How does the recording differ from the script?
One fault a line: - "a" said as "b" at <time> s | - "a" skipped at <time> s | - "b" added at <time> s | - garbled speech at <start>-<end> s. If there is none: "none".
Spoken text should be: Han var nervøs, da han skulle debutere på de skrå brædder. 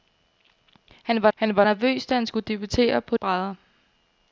- "han var" added at 1.4 s
- "de skrå" skipped at 3.2 s